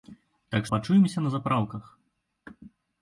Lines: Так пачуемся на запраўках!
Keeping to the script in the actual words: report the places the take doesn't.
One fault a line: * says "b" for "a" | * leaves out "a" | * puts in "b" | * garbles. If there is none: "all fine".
all fine